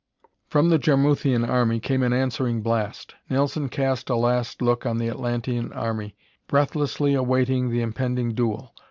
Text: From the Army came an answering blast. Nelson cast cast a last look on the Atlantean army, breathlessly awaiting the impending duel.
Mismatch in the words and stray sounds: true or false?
true